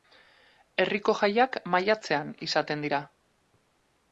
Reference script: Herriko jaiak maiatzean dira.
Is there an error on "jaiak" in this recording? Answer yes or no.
no